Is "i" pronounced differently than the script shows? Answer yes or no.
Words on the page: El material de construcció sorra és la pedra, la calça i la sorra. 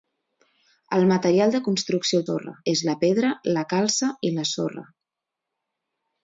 no